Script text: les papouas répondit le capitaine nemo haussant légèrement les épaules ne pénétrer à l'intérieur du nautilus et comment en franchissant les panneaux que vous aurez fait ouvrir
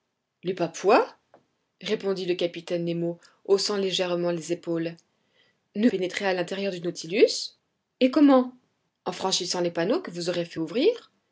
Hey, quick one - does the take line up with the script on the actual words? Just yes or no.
yes